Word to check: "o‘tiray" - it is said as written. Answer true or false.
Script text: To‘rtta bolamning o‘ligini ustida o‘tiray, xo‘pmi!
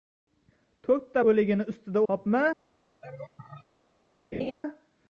false